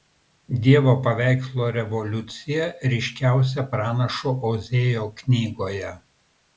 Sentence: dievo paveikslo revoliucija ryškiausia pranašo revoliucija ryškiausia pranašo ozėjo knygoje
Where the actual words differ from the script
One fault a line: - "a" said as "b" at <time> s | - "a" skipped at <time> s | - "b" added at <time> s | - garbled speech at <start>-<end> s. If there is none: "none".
- "revoliucija ryškiausia pranašo" skipped at 4.4 s